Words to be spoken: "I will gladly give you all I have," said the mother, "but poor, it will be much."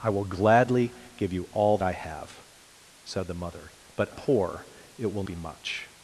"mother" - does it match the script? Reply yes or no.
yes